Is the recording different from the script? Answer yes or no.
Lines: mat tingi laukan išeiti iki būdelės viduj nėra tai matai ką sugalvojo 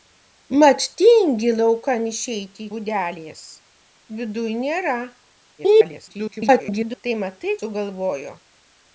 yes